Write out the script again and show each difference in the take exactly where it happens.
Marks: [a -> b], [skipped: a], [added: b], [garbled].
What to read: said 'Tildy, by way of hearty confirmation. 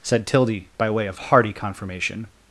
said 'Tildy, by way of hearty confirmation.